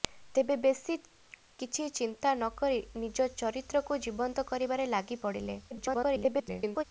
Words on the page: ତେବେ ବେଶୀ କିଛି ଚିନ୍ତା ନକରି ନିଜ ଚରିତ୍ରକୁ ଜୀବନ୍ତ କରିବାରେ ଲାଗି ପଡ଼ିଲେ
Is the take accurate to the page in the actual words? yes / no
no